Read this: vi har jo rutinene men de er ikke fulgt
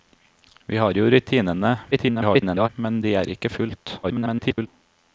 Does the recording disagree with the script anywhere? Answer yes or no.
yes